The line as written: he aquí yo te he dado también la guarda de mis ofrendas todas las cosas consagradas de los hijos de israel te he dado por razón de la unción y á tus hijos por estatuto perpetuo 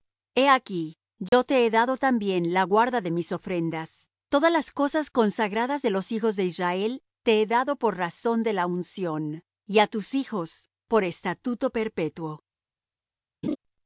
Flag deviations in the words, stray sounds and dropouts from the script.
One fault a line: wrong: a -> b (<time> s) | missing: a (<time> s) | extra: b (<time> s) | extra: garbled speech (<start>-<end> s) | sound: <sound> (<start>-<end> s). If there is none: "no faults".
sound: dropout (1.3-1.3 s)
sound: laugh (13.4-13.6 s)